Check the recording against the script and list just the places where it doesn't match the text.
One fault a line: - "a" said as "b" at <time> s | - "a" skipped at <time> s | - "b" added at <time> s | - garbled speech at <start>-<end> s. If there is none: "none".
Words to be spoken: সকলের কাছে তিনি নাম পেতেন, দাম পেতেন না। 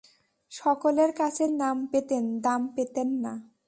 - "তিনি" skipped at 1.4 s